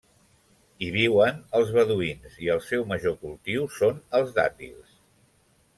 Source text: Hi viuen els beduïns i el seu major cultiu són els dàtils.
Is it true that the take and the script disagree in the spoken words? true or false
false